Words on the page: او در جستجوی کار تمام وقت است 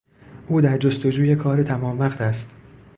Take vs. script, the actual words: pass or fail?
pass